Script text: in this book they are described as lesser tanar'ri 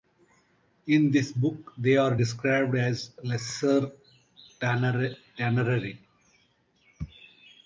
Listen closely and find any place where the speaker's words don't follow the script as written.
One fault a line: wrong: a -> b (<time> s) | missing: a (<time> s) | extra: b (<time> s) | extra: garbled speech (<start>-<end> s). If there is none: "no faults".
no faults